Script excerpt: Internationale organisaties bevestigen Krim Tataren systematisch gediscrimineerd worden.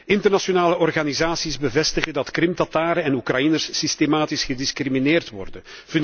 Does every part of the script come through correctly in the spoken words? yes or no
no